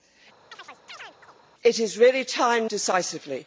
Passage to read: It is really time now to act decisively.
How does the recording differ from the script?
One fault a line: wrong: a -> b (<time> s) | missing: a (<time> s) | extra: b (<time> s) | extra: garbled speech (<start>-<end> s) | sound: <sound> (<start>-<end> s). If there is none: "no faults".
sound: chirp (0.5-1.4 s)
missing: now to act (2.7 s)